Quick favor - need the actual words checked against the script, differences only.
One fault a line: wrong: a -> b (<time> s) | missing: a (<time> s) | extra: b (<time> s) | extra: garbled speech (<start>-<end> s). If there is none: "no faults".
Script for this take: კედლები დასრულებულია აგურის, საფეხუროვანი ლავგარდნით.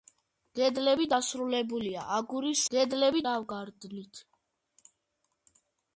wrong: საფეხუროვანი -> კედლები (2.7 s)